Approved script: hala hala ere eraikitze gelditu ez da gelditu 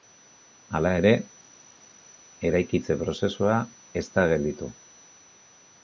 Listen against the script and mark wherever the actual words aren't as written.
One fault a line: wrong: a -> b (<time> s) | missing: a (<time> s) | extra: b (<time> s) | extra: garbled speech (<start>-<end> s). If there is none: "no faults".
missing: hala (0.9 s)
wrong: gelditu -> prozesua (3.0 s)